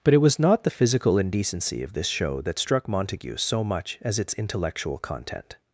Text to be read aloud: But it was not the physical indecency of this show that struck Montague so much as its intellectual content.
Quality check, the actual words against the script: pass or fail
pass